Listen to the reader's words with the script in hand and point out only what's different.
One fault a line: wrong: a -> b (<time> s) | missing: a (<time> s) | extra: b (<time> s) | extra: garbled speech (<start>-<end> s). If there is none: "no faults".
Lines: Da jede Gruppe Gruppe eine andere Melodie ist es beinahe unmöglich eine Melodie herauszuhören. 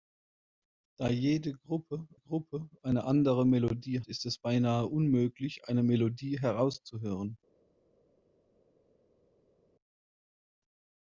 no faults